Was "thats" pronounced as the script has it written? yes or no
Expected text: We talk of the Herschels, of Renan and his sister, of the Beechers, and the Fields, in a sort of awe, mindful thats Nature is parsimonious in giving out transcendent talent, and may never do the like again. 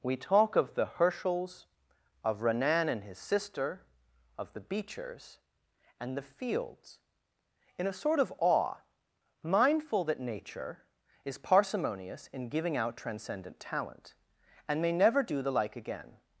no